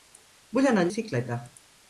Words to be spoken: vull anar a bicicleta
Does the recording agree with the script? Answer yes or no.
yes